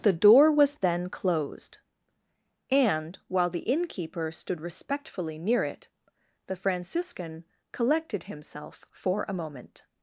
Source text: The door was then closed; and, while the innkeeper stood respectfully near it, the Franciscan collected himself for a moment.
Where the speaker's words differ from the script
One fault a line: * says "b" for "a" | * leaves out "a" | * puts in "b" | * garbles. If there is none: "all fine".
all fine